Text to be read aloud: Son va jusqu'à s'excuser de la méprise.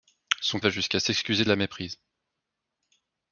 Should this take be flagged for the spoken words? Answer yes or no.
no